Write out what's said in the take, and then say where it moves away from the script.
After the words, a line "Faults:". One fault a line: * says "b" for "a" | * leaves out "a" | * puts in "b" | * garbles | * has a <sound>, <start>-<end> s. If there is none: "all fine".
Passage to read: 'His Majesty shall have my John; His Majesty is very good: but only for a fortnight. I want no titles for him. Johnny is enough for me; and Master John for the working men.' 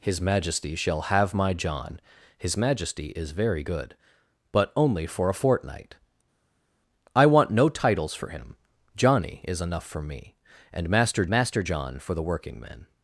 'His Majesty shall have my John; His Majesty is very good: but only for a fortnight. I want no titles for him. Johnny is enough for me; and Master Master John for the working men.'
Faults:
* puts in "Master"